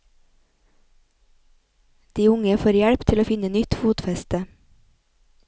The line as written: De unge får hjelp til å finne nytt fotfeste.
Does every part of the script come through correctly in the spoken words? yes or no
yes